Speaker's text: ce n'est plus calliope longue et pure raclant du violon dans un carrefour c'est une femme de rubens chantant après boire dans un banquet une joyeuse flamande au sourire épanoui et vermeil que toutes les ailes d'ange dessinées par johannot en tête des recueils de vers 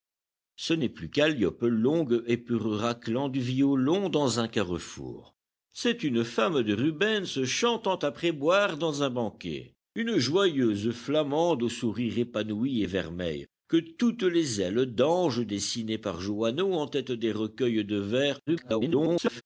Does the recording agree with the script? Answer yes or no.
no